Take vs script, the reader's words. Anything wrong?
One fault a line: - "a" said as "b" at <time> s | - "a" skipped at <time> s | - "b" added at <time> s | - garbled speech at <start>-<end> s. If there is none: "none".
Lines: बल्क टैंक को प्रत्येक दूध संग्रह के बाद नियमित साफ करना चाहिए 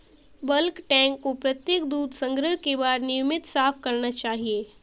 none